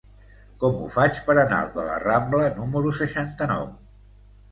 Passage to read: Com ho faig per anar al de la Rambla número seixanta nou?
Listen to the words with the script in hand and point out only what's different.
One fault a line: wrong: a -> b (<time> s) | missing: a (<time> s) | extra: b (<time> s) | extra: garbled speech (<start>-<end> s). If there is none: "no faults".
no faults